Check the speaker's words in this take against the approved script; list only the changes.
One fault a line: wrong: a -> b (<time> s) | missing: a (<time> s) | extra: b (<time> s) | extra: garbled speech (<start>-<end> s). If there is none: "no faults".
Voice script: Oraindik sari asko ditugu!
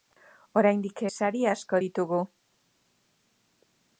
no faults